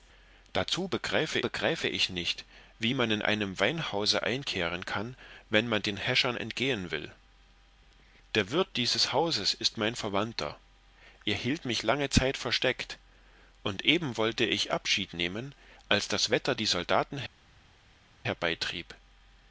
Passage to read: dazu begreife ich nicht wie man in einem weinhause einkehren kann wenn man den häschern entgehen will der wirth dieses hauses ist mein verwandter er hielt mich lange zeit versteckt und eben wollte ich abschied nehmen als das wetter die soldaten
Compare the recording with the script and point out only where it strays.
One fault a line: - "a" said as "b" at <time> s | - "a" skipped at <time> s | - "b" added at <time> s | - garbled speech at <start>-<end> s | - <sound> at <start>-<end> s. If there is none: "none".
- "begreife" added at 1.4 s